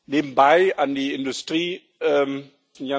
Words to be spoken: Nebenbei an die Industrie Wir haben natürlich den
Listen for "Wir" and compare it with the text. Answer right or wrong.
wrong